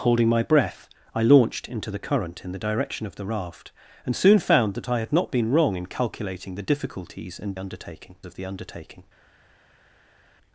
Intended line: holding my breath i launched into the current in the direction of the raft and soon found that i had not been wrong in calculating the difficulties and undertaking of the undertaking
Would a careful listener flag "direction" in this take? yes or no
no